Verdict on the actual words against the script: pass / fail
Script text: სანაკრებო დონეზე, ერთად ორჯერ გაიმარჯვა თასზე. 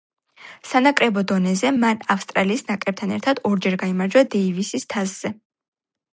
fail